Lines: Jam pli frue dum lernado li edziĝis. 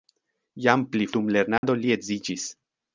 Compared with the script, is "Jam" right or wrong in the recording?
right